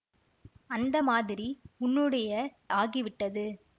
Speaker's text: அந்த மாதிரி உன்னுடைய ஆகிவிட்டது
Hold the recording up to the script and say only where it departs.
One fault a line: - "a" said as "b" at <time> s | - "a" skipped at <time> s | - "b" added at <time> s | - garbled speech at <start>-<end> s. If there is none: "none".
none